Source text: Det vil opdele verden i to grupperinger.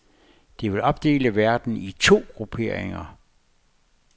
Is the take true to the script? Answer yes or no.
yes